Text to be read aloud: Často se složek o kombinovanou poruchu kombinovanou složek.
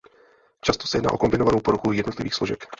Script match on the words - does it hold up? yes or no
no